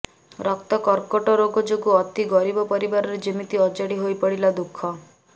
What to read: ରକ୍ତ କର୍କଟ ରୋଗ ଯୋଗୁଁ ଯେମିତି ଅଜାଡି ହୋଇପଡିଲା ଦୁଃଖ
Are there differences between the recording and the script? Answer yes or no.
yes